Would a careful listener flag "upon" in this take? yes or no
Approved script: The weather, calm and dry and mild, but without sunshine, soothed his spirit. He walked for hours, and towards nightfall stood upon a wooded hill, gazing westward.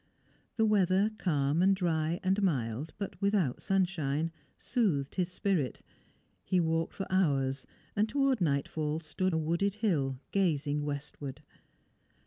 yes